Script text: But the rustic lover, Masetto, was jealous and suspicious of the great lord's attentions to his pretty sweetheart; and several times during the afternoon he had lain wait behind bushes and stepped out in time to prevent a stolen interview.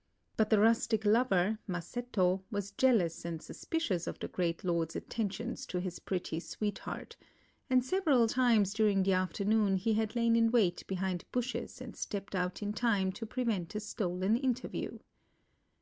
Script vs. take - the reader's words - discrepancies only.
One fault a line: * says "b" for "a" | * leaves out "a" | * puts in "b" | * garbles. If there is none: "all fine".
* puts in "in"